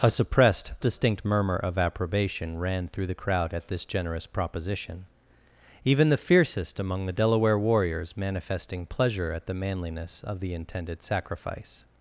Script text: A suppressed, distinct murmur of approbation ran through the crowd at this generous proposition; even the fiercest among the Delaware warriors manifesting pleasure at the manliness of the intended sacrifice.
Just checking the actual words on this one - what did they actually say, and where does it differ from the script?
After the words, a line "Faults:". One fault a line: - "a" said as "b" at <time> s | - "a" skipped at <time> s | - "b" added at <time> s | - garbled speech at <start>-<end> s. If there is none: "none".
A suppressed, distinct murmur of approbation ran through the crowd at this generous proposition; even the fiercest among the Delaware warriors manifesting pleasure at the manliness of the intended sacrifice.
Faults:
none